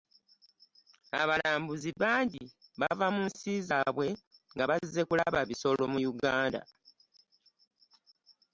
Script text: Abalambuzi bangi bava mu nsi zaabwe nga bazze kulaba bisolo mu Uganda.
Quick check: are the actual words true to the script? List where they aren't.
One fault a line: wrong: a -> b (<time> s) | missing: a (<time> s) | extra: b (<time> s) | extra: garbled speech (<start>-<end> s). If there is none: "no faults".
no faults